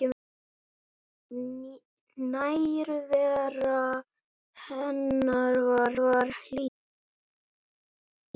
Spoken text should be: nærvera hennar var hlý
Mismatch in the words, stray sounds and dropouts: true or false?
true